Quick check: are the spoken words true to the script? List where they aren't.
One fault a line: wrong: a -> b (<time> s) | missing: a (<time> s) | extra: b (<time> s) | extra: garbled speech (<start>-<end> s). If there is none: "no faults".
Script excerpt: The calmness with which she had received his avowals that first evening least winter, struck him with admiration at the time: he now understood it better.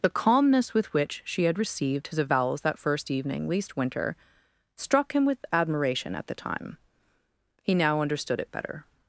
no faults